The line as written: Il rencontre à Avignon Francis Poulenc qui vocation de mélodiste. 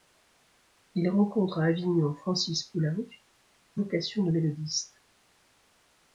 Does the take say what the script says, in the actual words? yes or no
yes